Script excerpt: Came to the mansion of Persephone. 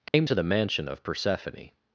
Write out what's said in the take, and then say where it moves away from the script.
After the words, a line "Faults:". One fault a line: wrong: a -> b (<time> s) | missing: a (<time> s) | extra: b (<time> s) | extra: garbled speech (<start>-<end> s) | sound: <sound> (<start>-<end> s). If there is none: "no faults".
Came to the mansion of Persephone.
Faults:
sound: dropout (0.1-0.1 s)